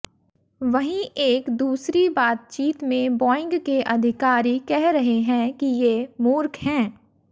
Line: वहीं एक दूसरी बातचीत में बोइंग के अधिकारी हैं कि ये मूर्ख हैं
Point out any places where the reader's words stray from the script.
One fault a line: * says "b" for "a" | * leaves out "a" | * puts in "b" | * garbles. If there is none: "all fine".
* puts in "कह रहे"